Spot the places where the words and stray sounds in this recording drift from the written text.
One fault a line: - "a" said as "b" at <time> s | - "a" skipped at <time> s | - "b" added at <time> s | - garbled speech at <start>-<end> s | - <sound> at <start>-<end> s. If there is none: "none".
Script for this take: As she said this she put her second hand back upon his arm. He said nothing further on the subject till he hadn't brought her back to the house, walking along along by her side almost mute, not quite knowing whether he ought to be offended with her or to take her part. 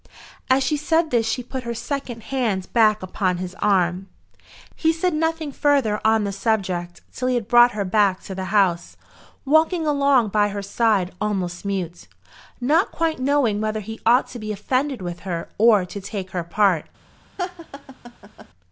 - "hadn't" said as "had" at 7.3 s
- "along" skipped at 10.3 s
- laugh at 17.4-18.5 s